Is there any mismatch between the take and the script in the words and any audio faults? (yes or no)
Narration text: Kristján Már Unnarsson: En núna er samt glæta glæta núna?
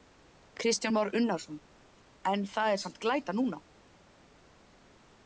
yes